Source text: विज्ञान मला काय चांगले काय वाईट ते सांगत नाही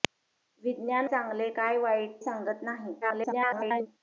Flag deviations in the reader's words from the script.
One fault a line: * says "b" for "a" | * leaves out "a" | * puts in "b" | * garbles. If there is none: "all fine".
* leaves out "मला काय"
* leaves out "ते"
* garbles